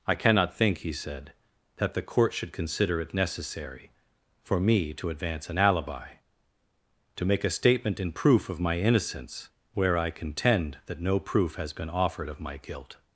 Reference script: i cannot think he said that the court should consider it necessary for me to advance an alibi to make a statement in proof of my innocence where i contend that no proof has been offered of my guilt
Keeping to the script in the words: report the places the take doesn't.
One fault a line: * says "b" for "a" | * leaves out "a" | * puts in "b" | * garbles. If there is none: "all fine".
all fine